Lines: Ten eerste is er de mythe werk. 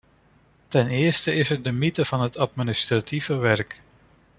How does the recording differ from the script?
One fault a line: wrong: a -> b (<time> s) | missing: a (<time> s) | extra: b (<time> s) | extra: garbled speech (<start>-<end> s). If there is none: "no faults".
extra: van het administratieve (2.0 s)